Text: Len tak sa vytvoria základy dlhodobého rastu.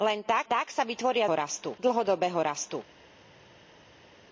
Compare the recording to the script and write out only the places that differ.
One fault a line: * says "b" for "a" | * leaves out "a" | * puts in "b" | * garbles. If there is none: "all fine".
* puts in "tak"
* says "rastu" for "základy"